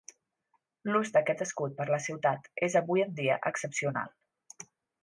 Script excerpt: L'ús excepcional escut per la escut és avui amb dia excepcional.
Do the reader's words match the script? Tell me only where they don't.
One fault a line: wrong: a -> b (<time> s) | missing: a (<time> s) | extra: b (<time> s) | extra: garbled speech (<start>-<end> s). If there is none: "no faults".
wrong: excepcional -> d'aquest (1.2 s)
wrong: escut -> ciutat (2.1 s)
wrong: amb -> en (3.1 s)